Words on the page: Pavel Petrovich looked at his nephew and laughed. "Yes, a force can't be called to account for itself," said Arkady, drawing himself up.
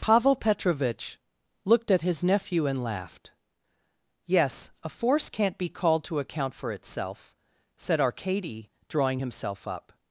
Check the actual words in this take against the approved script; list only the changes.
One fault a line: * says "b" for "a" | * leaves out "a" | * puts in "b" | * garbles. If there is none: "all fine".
all fine